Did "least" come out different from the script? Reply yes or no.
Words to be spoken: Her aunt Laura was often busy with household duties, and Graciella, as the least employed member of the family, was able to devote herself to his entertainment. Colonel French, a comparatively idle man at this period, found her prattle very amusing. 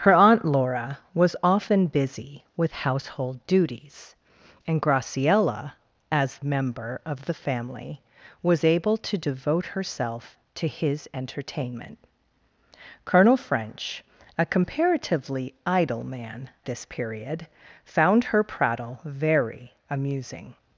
yes